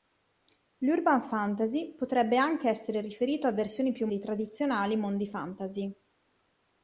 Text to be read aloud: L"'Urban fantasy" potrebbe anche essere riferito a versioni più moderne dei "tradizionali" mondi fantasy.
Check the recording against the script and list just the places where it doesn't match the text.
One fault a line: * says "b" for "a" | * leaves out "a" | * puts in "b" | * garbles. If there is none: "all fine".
* leaves out "moderne"